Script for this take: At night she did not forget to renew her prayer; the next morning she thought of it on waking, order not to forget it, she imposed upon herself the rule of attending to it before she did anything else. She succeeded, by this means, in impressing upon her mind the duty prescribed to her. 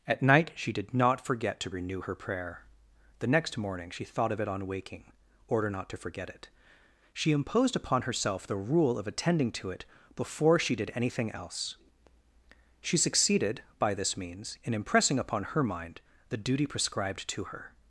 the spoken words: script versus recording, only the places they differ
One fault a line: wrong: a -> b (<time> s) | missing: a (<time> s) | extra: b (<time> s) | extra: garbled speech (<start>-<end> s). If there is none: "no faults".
no faults